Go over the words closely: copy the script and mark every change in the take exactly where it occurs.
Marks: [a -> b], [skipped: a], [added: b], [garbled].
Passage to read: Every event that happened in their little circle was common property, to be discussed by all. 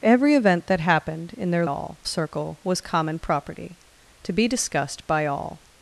Every event that happened in their [little -> all] circle was common property, to be discussed by all.